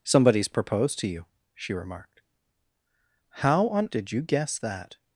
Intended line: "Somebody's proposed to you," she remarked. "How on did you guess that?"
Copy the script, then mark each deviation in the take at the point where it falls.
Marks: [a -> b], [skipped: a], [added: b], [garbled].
"Somebody's proposed to you," she remarked. "How on did you guess that?"